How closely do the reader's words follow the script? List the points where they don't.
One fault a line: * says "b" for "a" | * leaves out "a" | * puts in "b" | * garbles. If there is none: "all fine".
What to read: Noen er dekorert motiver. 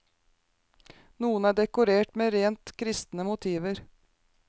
* puts in "med rent kristne"